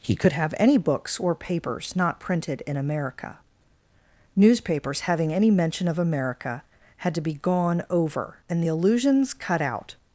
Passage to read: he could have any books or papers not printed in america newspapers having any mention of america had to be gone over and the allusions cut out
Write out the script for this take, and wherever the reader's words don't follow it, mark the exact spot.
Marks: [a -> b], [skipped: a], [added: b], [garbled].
he could have any books or papers not printed in america newspapers having any mention of america had to be gone over and the allusions cut out